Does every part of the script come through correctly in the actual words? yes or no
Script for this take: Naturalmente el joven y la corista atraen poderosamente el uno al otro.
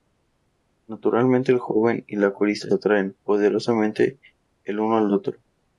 yes